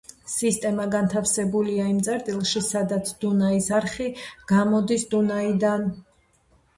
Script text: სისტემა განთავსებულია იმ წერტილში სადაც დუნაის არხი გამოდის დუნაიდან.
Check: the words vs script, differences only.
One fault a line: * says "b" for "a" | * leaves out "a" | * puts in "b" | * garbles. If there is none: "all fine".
all fine